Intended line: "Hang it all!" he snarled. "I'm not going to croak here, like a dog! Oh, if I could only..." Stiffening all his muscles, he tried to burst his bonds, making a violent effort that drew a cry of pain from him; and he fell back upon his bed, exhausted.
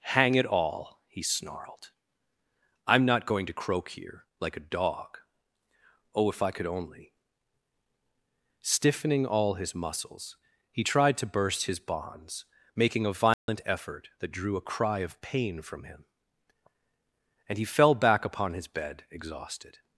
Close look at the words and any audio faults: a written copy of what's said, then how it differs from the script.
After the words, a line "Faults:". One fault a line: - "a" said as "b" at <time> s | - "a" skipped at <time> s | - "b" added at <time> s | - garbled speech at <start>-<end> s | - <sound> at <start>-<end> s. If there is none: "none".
"Hang it all!" he snarled. "I'm not going to croak here, like a dog! Oh, if I could only..." Stiffening all his muscles, he tried to burst his bonds, making a violent effort that drew a cry of pain from him; and he fell back upon his bed, exhausted.
Faults:
- dropout at 13.3-13.5 s